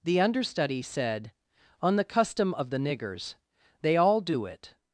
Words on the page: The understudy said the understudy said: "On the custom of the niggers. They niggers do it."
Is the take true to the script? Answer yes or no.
no